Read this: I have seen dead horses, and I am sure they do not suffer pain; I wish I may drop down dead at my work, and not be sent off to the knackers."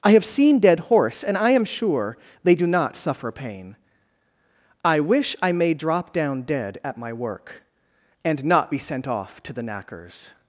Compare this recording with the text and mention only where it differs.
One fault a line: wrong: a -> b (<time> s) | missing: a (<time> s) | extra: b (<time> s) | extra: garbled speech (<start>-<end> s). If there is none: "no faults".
wrong: horses -> horse (0.8 s)